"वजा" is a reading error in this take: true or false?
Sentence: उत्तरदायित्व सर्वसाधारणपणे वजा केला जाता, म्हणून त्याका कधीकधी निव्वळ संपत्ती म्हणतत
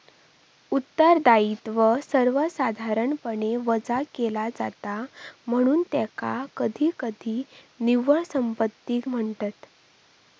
false